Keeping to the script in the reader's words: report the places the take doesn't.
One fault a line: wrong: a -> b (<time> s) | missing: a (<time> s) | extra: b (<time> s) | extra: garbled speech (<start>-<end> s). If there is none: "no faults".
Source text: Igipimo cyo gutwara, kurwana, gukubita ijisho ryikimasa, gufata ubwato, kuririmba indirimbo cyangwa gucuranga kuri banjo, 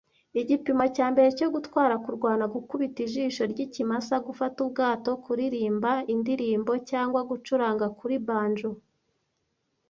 extra: cya mbere (0.9 s)